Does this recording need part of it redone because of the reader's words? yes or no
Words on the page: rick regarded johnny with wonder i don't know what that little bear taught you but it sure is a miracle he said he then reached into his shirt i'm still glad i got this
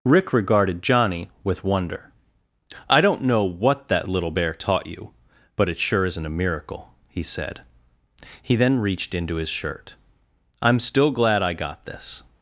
yes